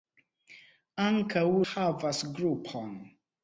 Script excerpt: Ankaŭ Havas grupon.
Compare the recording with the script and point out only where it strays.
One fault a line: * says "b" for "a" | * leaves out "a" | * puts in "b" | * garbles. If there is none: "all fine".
all fine